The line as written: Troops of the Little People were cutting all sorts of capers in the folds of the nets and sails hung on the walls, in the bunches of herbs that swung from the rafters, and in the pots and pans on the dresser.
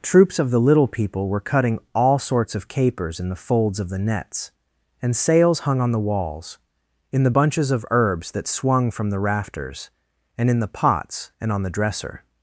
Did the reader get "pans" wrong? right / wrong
wrong